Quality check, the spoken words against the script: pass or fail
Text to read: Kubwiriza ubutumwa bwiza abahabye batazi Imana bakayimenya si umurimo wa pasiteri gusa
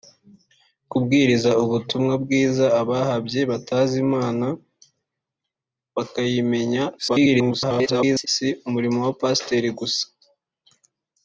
fail